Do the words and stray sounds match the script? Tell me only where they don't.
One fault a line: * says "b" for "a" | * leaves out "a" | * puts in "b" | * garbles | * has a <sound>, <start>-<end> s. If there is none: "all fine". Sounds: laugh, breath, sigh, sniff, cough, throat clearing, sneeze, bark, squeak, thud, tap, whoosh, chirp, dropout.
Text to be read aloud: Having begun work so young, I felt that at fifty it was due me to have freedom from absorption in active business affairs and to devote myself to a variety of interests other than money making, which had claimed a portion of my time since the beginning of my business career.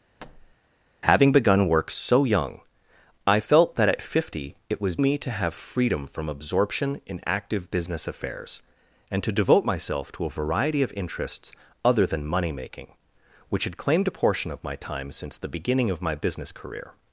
* has a thud, 0.2-0.6 s
* leaves out "due"